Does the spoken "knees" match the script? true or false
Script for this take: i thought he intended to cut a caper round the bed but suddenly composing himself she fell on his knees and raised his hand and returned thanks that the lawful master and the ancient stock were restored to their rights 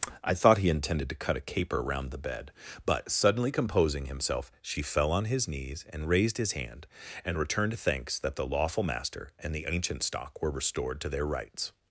true